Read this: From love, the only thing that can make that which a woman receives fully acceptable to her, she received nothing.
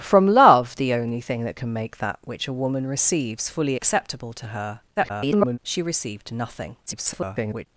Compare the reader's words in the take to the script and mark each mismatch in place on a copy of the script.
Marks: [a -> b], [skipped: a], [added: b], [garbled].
From love, the only thing that can make that which a woman receives fully acceptable to her, [garbled] she received nothing. [garbled]